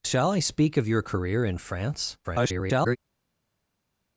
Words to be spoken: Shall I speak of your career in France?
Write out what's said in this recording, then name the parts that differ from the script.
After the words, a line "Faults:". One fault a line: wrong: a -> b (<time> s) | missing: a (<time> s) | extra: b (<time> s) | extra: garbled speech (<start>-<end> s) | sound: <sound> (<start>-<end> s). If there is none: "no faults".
Shall I speak of your career in France? [garbled]
Faults:
extra: garbled speech (2.2-3.0 s)